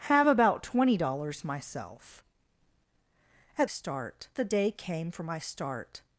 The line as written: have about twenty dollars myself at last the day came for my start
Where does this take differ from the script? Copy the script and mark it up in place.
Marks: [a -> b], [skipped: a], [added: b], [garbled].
have about twenty dollars myself at [last -> start] the day came for my start